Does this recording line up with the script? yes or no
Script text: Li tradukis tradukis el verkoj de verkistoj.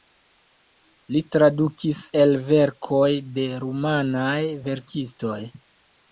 no